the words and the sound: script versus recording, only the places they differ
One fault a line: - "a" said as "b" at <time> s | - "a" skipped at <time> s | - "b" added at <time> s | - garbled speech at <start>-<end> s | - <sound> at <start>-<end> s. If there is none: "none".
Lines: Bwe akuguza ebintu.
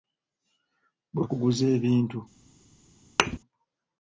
- thud at 3.2-3.4 s